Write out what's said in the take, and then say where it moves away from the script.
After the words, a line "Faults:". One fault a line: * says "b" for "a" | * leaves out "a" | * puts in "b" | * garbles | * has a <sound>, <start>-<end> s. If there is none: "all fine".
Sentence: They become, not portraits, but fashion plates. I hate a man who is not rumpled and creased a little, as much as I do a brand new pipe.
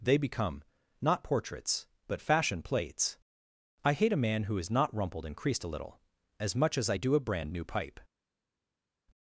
They become, not portraits, but fashion plates. I hate a man who is not rumpled and creased a little, as much as I do a brand new pipe.
Faults:
all fine